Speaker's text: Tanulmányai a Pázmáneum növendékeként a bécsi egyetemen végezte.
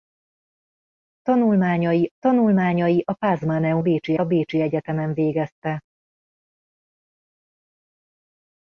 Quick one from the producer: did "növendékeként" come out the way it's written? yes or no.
no